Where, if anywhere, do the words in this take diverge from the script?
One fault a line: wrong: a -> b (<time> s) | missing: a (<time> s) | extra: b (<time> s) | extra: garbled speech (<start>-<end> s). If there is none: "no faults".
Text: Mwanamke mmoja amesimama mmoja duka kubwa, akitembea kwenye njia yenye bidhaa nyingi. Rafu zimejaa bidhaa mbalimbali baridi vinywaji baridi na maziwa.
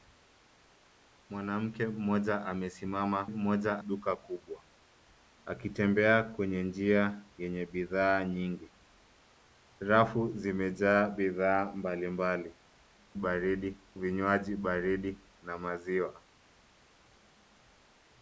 no faults